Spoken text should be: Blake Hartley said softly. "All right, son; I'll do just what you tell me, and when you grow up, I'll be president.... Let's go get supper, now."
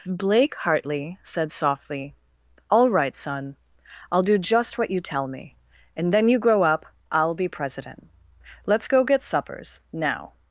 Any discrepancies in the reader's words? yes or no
yes